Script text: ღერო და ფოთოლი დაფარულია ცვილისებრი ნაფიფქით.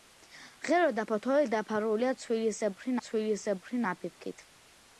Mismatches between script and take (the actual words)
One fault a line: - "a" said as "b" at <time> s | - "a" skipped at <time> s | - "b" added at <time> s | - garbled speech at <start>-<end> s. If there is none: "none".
- "ცვილისებრი" added at 3.1 s